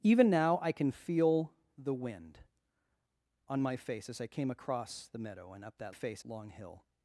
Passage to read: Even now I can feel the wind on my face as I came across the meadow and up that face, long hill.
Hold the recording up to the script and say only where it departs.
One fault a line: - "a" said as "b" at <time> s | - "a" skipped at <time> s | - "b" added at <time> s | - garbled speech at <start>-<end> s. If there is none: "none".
none